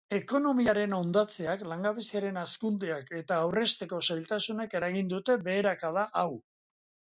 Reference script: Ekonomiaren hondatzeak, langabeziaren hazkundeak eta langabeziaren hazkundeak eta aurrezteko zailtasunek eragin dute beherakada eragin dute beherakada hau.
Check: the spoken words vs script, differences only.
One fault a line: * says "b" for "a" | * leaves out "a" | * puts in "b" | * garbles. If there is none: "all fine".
* leaves out "langabeziaren hazkundeak eta"
* leaves out "eragin dute beherakada"